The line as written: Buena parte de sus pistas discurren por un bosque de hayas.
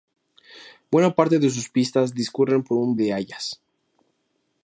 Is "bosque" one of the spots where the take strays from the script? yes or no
yes